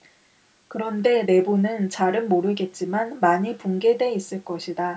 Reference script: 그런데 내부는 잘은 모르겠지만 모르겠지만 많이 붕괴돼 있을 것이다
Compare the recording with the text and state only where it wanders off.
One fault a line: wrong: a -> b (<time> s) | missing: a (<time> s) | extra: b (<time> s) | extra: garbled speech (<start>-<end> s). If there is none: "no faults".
missing: 모르겠지만 (3.2 s)